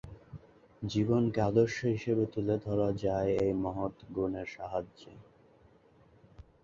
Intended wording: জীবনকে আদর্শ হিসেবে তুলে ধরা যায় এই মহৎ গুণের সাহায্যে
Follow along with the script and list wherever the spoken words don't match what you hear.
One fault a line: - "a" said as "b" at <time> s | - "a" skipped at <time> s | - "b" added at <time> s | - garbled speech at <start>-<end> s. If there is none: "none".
none